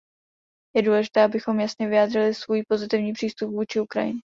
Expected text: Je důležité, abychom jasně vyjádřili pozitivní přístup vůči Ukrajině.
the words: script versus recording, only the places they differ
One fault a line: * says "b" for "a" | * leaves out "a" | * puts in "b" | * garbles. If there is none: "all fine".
* puts in "svůj"